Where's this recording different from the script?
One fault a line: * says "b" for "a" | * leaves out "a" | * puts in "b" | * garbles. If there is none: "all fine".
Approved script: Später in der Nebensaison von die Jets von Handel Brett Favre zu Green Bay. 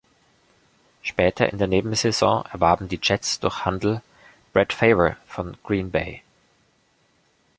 * says "erwarben" for "von"
* says "durch" for "von"
* says "von" for "zu"